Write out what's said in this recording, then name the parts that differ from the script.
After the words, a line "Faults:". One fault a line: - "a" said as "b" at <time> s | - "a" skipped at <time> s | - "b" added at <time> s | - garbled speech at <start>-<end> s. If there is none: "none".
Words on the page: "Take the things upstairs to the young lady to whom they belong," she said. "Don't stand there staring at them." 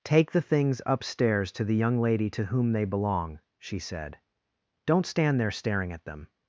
"Take the things upstairs to the young lady to whom they belong," she said. "Don't stand there staring at them."
Faults:
none